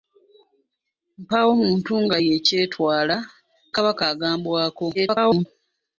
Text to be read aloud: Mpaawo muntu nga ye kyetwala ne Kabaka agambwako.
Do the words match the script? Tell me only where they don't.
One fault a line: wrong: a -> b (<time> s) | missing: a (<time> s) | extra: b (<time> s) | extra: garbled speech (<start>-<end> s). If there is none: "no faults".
missing: ne (3.2 s)
extra: garbled speech (4.9-5.5 s)